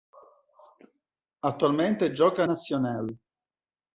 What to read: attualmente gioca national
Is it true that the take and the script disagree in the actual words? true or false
false